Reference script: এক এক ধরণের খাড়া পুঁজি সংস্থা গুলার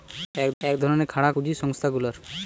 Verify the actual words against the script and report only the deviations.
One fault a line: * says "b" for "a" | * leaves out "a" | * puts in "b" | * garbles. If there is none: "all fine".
all fine